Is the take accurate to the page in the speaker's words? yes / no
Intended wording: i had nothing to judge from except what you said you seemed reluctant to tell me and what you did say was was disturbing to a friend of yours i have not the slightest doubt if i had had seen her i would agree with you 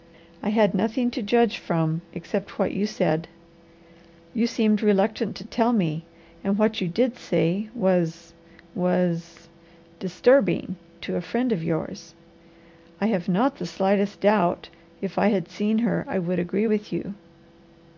no